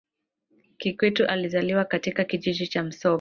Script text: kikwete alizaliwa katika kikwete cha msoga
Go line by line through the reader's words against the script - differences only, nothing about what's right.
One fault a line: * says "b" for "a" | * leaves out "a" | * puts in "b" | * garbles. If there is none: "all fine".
* says "kijiji" for "kikwete"